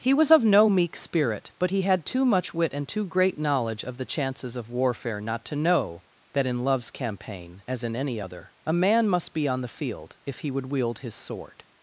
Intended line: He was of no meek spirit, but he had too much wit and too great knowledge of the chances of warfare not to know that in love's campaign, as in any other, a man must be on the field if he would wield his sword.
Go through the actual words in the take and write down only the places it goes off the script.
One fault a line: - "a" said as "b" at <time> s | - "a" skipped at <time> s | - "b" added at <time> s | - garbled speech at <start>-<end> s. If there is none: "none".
none